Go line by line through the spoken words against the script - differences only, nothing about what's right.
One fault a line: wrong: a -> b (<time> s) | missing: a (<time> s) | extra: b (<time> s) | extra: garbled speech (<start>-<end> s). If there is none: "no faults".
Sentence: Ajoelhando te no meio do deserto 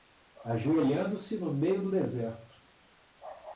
wrong: te -> se (1.1 s)